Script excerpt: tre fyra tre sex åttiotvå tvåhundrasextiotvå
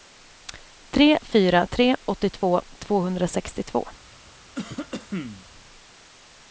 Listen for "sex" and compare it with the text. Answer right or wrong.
wrong